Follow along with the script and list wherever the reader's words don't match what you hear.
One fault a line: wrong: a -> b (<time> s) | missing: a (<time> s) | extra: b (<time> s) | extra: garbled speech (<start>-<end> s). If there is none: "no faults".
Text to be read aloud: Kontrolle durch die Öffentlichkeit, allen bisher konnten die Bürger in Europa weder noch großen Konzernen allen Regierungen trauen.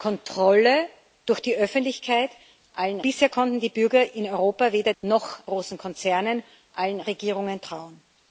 no faults